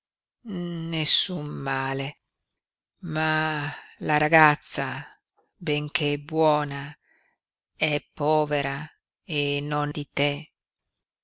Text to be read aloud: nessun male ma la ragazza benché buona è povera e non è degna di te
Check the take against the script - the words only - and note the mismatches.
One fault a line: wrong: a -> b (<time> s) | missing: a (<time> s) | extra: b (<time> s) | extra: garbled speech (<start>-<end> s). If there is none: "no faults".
missing: è degna (9.9 s)